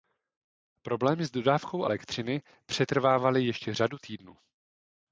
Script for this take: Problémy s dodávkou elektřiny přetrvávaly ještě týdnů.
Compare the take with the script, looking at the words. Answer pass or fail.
fail